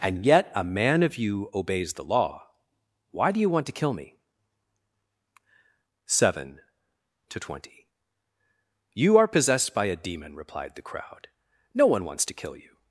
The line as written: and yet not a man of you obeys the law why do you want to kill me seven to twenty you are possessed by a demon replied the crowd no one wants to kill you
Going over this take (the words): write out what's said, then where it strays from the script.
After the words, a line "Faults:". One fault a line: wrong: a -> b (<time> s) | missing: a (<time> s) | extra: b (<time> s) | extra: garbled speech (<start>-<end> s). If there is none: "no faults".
and yet a man of you obeys the law why do you want to kill me seven to twenty you are possessed by a demon replied the crowd no one wants to kill you
Faults:
missing: not (0.5 s)